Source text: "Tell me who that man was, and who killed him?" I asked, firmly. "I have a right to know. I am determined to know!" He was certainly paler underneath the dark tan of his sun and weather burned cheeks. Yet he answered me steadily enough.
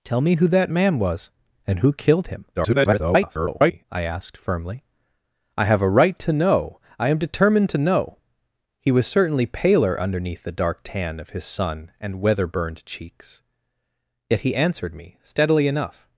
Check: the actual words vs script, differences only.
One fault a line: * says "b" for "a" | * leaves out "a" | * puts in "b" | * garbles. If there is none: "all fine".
* garbles